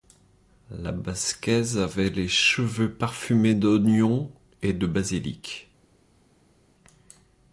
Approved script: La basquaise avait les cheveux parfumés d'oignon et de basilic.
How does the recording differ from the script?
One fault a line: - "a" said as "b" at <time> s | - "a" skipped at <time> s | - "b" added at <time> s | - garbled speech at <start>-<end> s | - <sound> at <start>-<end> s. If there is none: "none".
none